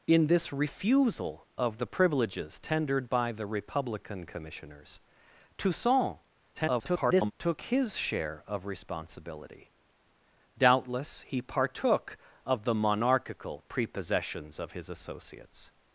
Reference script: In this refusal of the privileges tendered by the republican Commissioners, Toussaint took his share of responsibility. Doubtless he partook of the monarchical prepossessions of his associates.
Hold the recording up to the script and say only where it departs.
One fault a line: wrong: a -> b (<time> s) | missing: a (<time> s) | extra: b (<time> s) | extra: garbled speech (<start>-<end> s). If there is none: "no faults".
extra: garbled speech (6.5-7.3 s)